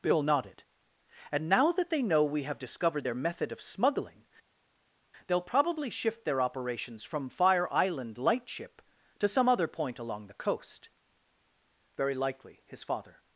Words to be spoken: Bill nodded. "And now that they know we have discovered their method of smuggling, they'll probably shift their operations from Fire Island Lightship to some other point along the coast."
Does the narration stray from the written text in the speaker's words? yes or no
yes